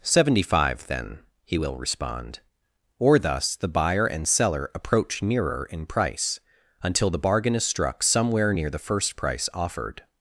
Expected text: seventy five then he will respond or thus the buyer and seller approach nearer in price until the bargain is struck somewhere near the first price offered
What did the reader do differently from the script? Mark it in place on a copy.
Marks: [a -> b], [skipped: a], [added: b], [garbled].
seventy five then he will respond or thus the buyer and seller approach nearer in price until the bargain is struck somewhere near the first price offered